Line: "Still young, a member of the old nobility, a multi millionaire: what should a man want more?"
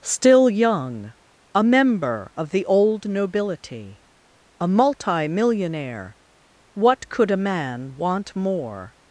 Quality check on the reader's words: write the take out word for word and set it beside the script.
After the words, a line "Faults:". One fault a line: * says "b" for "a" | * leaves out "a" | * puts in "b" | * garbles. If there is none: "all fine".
"Still young, a member of the old nobility, a multi millionaire: what could a man want more?"
Faults:
* says "could" for "should"